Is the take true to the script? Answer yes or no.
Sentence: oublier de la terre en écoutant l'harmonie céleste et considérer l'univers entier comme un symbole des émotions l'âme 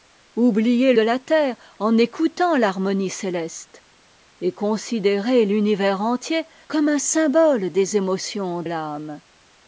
yes